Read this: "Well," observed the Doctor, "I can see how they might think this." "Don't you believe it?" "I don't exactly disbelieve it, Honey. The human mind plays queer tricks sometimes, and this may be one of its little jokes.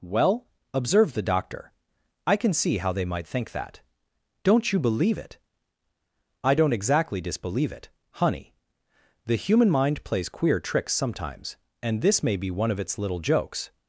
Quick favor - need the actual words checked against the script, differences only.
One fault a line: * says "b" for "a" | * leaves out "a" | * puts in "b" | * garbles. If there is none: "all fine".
* says "that" for "this"